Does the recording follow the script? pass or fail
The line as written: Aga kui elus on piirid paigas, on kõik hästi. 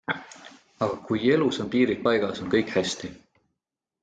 pass